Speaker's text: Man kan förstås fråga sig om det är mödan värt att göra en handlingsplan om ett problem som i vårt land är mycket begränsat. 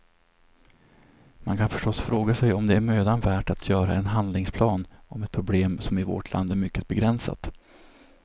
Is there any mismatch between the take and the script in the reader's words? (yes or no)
no